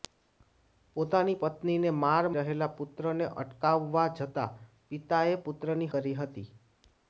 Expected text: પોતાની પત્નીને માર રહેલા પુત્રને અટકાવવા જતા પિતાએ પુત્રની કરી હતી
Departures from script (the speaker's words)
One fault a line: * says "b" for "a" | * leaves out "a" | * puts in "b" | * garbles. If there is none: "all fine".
all fine